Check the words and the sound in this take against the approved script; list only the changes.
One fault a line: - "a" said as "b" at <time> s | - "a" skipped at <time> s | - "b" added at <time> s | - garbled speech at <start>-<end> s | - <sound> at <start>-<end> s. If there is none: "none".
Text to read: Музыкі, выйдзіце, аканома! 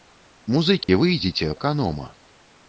- dropout at 0.8-0.9 s